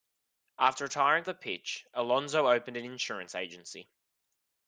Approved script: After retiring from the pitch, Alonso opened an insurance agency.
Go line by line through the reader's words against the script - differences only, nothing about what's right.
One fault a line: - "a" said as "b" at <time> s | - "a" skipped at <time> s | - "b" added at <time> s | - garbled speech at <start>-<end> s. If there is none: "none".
- "from" skipped at 1.2 s